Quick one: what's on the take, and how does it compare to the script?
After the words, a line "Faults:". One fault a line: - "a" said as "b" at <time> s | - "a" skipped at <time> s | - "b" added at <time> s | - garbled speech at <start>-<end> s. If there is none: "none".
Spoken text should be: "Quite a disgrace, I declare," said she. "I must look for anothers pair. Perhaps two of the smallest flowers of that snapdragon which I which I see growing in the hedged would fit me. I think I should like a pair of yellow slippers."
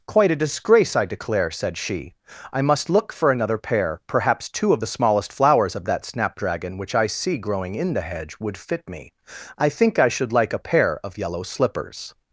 "Quite a disgrace, I declare," said she. "I must look for another pair. Perhaps two of the smallest flowers of that snapdragon which I see growing in the hedge would fit me. I think I should like a pair of yellow slippers."
Faults:
- "anothers" said as "another" at 3.3 s
- "which I" skipped at 7.1 s
- "hedged" said as "hedge" at 8.0 s